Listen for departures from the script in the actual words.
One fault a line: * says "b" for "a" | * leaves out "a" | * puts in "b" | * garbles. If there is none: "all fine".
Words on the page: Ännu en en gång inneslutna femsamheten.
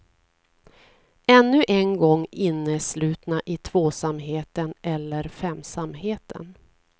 * leaves out "en"
* puts in "i tvåsamheten eller"